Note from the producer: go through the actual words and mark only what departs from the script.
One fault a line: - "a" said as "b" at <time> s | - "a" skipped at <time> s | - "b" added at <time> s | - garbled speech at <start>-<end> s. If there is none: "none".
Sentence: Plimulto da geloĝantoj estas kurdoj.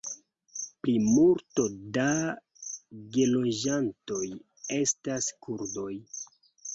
none